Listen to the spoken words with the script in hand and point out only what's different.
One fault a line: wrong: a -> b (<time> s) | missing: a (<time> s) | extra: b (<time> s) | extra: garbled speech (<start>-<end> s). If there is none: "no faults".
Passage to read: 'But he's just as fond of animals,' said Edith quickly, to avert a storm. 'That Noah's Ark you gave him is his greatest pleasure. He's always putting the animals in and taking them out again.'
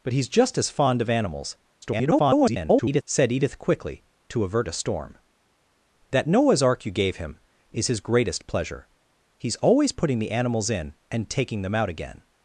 extra: garbled speech (1.8-3.0 s)